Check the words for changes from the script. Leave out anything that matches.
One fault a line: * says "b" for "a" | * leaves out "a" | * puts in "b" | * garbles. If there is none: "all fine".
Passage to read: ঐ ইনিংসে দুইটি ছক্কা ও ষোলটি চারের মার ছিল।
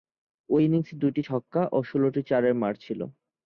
all fine